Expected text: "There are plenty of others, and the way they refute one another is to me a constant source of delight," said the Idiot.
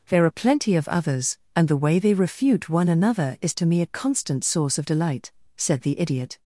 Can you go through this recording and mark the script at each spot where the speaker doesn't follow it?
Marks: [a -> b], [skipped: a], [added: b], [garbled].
"There are plenty of others, and the way they refute one another is to me a constant source of delight," said the Idiot.